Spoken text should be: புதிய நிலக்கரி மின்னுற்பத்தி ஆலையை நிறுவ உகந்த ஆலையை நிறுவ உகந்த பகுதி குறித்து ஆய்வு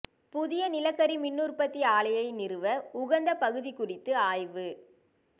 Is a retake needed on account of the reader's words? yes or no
yes